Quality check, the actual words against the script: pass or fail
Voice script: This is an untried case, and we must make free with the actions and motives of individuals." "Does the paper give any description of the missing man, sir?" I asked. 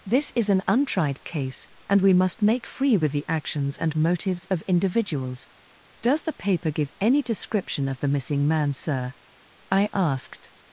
pass